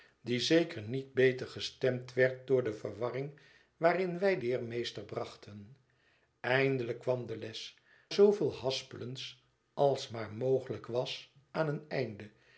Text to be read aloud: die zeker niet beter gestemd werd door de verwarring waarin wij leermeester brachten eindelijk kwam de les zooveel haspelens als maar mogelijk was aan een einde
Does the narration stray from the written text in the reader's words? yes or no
no